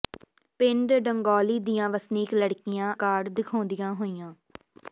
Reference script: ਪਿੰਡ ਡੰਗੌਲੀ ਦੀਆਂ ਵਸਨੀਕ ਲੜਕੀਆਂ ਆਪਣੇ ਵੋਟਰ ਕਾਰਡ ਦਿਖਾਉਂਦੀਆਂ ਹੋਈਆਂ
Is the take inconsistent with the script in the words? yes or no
yes